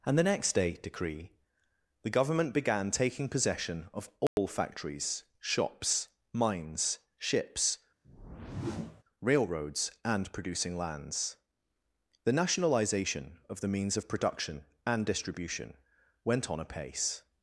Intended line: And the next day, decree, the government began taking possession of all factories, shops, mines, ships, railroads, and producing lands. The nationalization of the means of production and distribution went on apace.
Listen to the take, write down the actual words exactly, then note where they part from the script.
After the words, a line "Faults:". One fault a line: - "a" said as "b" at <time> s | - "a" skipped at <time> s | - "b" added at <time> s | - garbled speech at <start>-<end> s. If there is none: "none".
And the next day, decree, the government began taking possession of all factories, shops, mines, ships, railroads, and producing lands. The nationalization of the means of production and distribution went on apace.
Faults:
none